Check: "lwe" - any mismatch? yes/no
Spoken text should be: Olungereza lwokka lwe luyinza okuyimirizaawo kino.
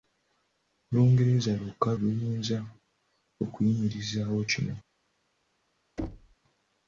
yes